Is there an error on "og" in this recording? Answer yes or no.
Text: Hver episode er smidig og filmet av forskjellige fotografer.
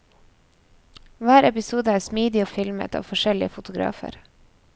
no